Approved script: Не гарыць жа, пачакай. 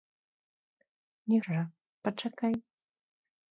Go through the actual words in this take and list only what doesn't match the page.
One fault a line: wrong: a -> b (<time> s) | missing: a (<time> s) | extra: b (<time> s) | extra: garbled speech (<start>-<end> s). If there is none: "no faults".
missing: гарыць (1.4 s)